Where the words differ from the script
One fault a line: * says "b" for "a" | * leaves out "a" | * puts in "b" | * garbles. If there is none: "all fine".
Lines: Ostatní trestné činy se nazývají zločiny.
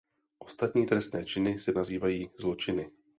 all fine